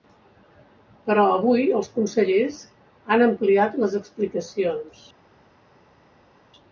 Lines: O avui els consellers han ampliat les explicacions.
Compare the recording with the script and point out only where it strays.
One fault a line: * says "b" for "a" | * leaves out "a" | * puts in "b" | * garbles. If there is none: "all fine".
* says "Però" for "O"